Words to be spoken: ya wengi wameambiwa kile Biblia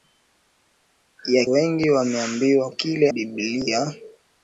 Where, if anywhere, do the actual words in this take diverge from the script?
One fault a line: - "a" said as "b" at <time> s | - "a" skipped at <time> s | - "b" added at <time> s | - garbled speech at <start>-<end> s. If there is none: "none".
none